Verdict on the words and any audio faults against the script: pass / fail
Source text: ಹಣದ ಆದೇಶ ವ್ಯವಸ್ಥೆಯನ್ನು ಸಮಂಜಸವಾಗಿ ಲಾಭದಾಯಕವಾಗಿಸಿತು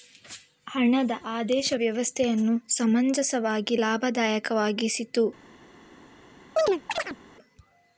fail